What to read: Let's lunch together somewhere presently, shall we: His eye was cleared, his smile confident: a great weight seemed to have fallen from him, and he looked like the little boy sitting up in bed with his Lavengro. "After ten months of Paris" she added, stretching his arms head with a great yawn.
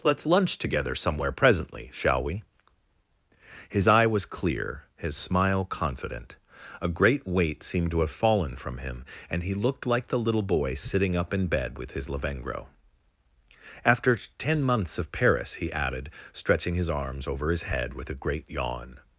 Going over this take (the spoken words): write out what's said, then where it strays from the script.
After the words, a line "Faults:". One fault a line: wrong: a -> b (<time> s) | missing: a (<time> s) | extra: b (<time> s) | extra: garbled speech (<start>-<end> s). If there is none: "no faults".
Let's lunch together somewhere presently, shall we: His eye was clear, his smile confident: a great weight seemed to have fallen from him, and he looked like the little boy sitting up in bed with his Lavengro. "After ten months of Paris" he added, stretching his arms over his head with a great yawn.
Faults:
wrong: cleared -> clear (4.2 s)
wrong: she -> he (15.6 s)
extra: over his (17.3 s)